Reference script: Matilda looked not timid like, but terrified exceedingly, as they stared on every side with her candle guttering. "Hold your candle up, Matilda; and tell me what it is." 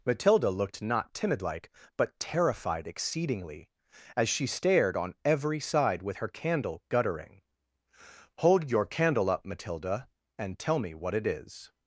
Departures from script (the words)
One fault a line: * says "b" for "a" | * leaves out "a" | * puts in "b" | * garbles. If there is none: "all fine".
* says "she" for "they"